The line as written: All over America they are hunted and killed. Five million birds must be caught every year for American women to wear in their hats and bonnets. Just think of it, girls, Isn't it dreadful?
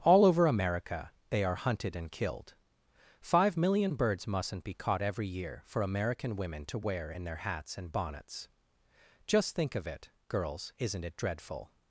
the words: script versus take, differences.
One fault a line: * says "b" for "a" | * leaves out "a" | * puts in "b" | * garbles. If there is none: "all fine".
* says "mustn't" for "must"